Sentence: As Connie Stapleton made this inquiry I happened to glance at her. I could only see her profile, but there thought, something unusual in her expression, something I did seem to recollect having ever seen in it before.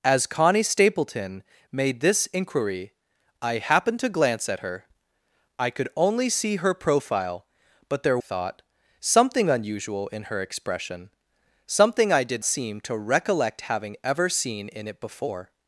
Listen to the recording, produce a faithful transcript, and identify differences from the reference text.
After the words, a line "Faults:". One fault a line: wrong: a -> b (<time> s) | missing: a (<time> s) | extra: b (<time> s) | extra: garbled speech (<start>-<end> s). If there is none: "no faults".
As Connie Stapleton made this inquiry I happened to glance at her. I could only see her profile, but there thought, something unusual in her expression, something I did seem to recollect having ever seen in it before.
Faults:
no faults